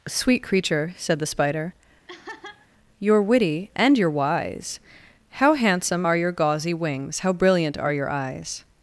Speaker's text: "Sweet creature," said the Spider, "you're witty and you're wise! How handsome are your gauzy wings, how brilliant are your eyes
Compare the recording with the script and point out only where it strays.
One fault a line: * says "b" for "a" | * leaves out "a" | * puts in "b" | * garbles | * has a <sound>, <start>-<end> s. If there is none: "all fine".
* has a laugh, 2.1-2.7 s